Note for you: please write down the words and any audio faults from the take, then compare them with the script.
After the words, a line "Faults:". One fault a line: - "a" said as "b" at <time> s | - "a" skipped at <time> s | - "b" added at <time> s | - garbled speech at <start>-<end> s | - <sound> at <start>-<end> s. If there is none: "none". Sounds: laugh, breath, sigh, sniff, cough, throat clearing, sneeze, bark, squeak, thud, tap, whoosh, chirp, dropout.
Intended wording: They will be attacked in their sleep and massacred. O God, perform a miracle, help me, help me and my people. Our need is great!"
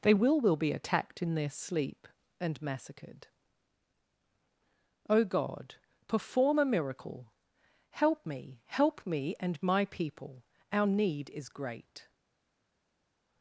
They will will be attacked in their sleep and massacred. O God, perform a miracle, help me, help me and my people. Our need is great!"
Faults:
- "will" added at 0.4 s